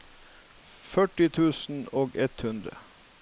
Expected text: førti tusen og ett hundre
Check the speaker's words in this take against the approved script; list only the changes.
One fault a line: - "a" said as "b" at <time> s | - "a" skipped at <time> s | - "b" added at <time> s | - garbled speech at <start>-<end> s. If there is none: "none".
none